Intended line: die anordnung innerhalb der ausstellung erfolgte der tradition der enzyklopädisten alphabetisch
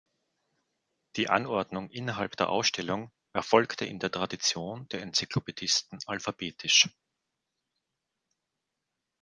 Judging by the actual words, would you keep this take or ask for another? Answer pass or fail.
fail